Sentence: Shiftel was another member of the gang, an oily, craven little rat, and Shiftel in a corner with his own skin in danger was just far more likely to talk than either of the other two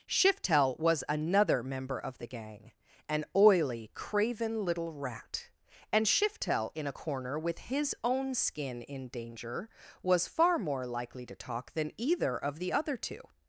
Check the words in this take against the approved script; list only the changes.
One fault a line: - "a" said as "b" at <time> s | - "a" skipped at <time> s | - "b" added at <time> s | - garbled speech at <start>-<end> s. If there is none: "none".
- "just" skipped at 10.3 s